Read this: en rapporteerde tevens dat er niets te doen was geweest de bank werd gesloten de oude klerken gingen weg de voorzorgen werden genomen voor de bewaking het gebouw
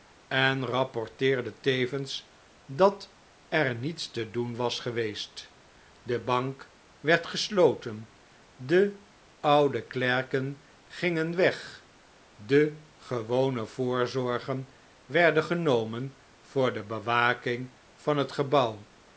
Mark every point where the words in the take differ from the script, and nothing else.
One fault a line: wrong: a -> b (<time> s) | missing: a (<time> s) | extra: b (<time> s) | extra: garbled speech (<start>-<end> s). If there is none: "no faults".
extra: gewone (13.0 s)
extra: van (17.9 s)